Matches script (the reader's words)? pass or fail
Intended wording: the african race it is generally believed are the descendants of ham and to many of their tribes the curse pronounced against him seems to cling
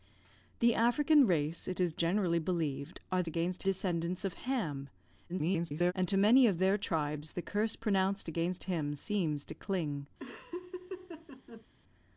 fail